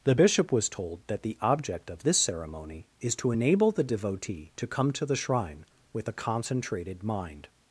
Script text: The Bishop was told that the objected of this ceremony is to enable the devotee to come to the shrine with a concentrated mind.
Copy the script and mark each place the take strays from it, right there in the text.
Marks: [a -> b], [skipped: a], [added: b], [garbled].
The Bishop was told that the [objected -> object] of this ceremony is to enable the devotee to come to the shrine with a concentrated mind.